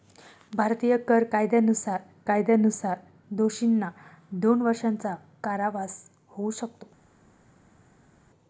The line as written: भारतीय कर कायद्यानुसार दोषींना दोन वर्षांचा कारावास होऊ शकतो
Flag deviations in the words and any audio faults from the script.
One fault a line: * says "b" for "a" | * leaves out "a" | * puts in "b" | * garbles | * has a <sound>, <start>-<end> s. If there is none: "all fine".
* puts in "कायद्यानुसार"